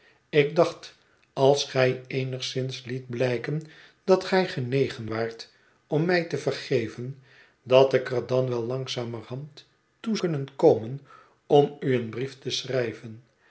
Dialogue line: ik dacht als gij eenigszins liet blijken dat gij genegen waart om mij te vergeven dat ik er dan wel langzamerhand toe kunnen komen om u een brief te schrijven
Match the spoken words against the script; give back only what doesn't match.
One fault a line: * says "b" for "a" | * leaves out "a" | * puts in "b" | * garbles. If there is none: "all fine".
all fine